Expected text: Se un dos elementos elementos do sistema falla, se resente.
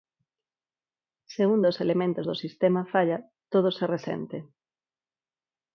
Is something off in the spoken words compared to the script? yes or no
yes